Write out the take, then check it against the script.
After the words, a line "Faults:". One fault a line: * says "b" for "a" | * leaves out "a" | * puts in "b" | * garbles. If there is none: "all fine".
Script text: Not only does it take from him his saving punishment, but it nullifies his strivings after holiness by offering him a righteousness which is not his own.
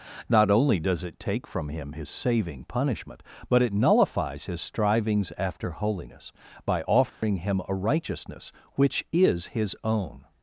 Not only does it take from him his saving punishment, but it nullifies his strivings after holiness by offering him a righteousness which is his own.
Faults:
* leaves out "not"